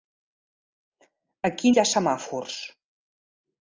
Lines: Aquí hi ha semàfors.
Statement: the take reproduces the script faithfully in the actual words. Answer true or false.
true